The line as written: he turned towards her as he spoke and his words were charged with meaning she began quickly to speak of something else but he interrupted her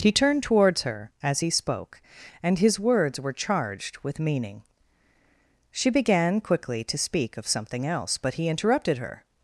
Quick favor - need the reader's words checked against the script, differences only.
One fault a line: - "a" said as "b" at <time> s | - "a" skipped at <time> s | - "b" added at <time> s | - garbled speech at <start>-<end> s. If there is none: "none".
none